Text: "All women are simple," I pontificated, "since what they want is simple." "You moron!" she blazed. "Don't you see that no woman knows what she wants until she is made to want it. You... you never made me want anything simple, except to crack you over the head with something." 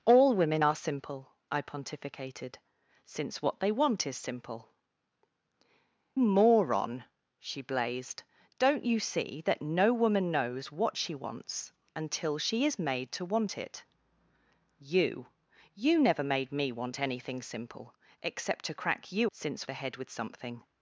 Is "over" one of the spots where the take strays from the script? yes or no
yes